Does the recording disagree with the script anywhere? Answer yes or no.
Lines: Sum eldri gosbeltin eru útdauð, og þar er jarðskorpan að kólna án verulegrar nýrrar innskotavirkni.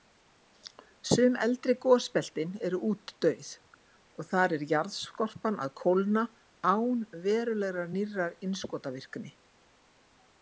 no